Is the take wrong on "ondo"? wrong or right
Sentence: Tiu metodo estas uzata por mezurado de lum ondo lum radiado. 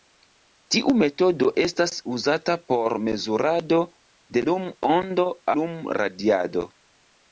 right